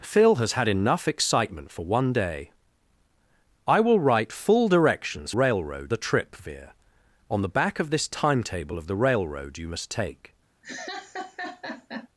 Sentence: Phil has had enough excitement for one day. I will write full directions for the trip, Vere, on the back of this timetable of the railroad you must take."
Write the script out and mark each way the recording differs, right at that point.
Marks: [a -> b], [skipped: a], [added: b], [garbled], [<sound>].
Phil has had enough excitement for one day. I will write full directions [for -> railroad] the trip, Vere, on the back of this timetable of the railroad you must take." [laugh]